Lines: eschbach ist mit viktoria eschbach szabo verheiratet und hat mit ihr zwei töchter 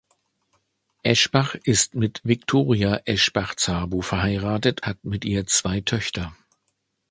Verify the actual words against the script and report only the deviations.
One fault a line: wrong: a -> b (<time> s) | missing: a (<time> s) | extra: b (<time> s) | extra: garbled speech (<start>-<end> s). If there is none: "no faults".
missing: und (4.8 s)